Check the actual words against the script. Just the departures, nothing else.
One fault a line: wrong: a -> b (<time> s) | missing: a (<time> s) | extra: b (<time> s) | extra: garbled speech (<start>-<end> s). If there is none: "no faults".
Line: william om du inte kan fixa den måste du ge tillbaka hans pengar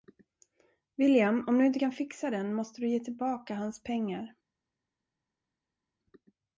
no faults